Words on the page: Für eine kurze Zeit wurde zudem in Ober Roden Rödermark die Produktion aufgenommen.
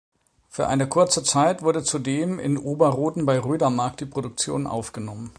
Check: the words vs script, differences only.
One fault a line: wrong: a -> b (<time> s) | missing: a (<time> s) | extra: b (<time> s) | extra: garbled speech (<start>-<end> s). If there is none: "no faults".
extra: bei (3.3 s)